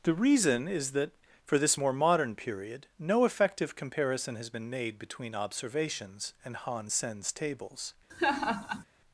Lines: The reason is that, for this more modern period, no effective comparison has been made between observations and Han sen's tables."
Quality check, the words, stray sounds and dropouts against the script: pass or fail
fail